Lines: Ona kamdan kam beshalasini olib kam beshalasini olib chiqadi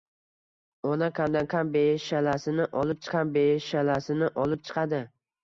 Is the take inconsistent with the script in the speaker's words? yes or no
no